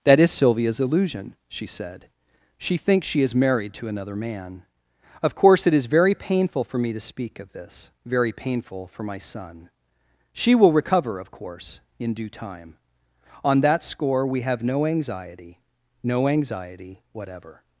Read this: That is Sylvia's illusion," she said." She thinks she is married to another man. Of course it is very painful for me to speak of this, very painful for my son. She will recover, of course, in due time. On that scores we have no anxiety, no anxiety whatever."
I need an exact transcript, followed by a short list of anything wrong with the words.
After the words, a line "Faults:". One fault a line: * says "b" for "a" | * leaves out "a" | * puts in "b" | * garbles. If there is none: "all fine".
That is Sylvia's illusion," she said." She thinks she is married to another man. Of course it is very painful for me to speak of this, very painful for my son. She will recover, of course, in due time. On that score we have no anxiety, no anxiety whatever."
Faults:
* says "score" for "scores"